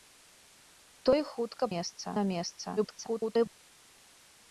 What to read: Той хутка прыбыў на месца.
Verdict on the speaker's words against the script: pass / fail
fail